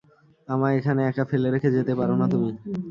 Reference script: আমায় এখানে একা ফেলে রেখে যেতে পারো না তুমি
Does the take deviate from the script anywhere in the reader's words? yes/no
no